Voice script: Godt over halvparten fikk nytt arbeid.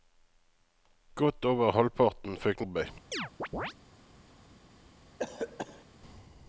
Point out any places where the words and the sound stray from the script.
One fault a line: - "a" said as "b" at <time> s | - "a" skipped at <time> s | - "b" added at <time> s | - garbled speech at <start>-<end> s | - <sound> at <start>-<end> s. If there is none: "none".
- "nytt" skipped at 2.6 s
- chirp at 3.1-3.7 s
- cough at 5.2-5.8 s